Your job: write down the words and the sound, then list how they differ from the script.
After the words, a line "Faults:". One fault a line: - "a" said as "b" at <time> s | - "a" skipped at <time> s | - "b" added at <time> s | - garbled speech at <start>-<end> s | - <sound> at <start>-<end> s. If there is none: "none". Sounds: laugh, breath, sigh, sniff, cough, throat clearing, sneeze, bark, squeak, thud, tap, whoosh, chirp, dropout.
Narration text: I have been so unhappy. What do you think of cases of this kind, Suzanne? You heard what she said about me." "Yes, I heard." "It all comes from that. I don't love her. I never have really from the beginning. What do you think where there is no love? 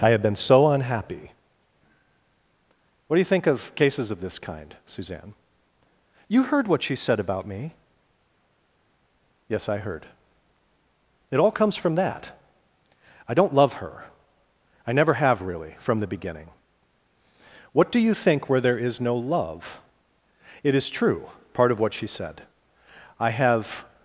I have been so unhappy. What do you think of cases of this kind, Suzanne? You heard what she said about me." "Yes, I heard." "It all comes from that. I don't love her. I never have really from the beginning. What do you think where there is no love? It is true, part of what she said. I have
Faults:
- "It is true part of what she said I have" added at 20.6 s